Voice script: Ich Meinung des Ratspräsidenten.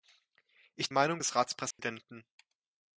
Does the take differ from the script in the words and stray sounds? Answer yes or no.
yes